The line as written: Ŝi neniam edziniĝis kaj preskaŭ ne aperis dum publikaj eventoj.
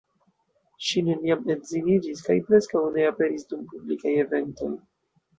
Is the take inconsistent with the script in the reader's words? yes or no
no